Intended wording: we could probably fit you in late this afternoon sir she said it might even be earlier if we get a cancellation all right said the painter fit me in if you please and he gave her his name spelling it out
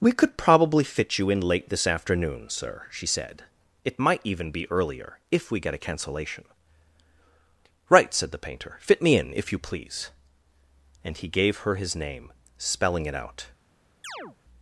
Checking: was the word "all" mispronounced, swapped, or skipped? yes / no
yes